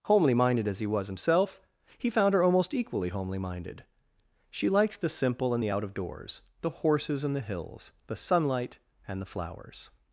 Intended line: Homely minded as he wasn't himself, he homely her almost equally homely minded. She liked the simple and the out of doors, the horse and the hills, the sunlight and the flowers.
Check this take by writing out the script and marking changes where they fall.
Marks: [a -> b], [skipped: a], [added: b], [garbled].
Homely minded as he [wasn't -> was] himself, he [homely -> found] her almost equally homely minded. She liked the simple and the out of doors, the [horse -> horses] and the hills, the sunlight and the flowers.